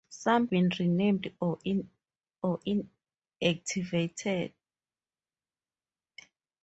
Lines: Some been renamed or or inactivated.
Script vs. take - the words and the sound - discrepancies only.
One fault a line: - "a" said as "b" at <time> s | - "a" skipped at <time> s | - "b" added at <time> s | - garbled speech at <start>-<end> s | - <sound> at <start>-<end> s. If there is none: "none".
none